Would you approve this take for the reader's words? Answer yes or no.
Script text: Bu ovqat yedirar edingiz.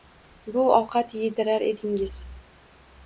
yes